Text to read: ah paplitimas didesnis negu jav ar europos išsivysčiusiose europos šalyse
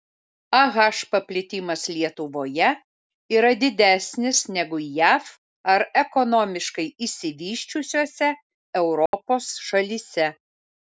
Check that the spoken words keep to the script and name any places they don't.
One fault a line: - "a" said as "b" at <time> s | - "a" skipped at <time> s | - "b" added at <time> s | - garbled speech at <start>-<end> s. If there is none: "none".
- "lietuvoje yra" added at 1.9 s
- "europos" said as "ekonomiškai" at 6.1 s